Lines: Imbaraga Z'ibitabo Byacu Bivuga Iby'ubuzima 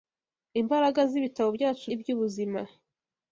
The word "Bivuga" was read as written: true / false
false